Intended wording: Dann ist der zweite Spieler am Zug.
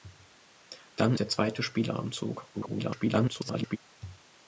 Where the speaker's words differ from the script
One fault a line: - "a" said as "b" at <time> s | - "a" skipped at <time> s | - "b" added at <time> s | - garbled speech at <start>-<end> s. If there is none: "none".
- "ist" skipped at 1.1 s
- garbled speech at 2.5-3.8 s